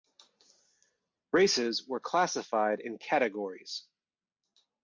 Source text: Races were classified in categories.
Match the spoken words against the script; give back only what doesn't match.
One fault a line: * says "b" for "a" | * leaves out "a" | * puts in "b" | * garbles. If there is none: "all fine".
all fine